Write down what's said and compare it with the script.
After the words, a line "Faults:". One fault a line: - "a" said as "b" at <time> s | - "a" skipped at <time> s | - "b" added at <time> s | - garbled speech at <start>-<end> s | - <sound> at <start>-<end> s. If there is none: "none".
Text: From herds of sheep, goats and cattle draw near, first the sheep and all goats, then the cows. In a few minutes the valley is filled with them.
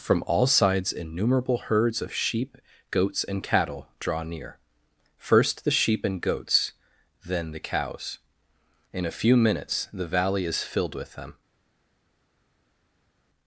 From all sides innumerable herds of sheep, goats and cattle draw near, first the sheep and goats, then the cows. In a few minutes the valley is filled with them.
Faults:
- "all sides innumerable" added at 0.2 s
- "all" skipped at 6.2 s